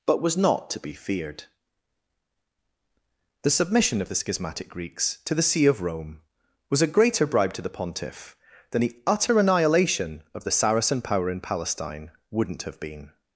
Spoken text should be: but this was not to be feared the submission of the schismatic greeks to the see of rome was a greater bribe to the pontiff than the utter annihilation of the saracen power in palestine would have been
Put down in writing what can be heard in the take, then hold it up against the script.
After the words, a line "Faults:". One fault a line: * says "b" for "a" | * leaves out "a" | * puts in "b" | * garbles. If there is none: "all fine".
but was not to be feared the submission of the schismatic greeks to the see of rome was a greater bribe to the pontiff than the utter annihilation of the saracen power in palestine wouldn't have been
Faults:
* leaves out "this"
* says "wouldn't" for "would"